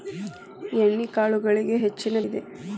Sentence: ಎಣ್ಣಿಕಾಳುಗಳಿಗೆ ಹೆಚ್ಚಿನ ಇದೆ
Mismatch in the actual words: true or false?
false